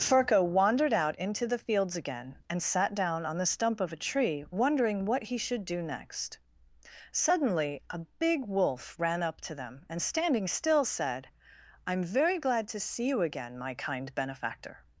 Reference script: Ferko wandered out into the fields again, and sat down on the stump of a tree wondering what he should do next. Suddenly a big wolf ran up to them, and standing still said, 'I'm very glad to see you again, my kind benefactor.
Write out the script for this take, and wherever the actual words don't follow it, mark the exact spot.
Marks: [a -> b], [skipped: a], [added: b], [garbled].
Ferko wandered out into the fields again, and sat down on the stump of a tree wondering what he should do next. Suddenly a big wolf ran up to them, and standing still said, 'I'm very glad to see you again, my kind benefactor.